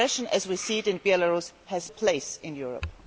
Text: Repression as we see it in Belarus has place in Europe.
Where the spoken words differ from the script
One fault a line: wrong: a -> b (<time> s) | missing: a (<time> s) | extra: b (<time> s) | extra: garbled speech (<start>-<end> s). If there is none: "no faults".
no faults